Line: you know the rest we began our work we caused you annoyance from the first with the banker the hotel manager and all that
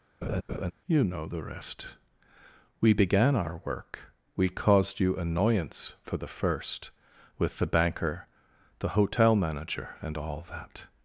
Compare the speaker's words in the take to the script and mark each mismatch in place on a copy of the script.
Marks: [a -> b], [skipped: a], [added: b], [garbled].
you know the rest we began our work we caused you annoyance [from -> for] the first with the banker the hotel manager and all that